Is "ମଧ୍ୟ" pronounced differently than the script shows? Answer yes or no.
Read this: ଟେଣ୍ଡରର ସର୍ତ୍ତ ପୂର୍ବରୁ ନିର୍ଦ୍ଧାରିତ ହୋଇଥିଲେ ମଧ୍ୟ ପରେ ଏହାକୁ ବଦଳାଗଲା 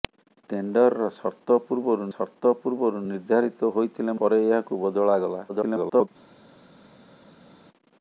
yes